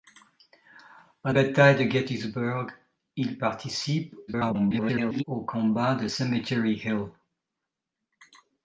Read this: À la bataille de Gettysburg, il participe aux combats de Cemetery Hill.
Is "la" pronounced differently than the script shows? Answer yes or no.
yes